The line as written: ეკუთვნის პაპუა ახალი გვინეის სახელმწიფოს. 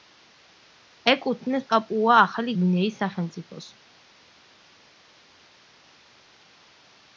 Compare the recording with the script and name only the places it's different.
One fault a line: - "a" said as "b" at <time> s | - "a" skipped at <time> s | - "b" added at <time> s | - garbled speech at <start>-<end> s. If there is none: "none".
none